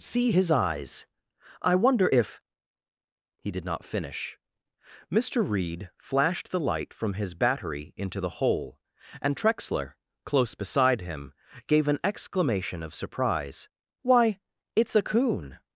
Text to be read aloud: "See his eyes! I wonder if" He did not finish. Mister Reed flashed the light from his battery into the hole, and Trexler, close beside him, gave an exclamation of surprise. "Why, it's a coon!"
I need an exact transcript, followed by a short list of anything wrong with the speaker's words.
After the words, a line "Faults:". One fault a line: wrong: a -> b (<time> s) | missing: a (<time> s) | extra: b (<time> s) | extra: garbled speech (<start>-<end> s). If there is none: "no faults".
"See his eyes! I wonder if" He did not finish. Mister Reed flashed the light from his battery into the hole, and Trexler, close beside him, gave an exclamation of surprise. "Why, it's a coon!"
Faults:
no faults